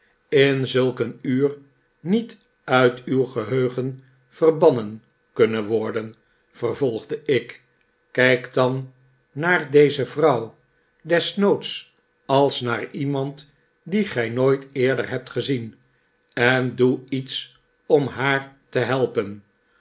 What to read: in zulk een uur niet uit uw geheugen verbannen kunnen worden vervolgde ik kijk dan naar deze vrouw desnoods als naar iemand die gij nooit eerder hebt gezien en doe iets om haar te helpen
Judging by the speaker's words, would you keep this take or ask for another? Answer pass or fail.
pass